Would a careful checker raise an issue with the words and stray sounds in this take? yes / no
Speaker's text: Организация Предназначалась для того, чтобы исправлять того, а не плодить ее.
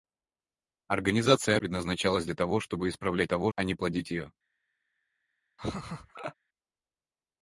yes